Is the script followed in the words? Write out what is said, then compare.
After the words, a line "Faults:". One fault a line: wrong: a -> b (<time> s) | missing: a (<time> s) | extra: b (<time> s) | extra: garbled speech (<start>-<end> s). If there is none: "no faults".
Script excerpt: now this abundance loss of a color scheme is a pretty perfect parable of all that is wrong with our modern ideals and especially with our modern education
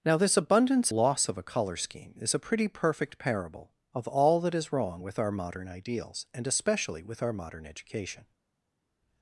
now this abundance loss of a color scheme is a pretty perfect parable of all that is wrong with our modern ideals and especially with our modern education
Faults:
no faults